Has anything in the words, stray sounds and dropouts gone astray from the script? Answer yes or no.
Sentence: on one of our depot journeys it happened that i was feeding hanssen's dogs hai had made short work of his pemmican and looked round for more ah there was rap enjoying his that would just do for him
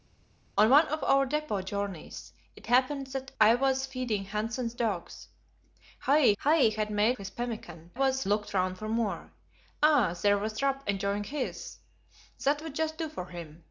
yes